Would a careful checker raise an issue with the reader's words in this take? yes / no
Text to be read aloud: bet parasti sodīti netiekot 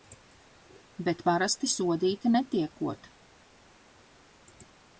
no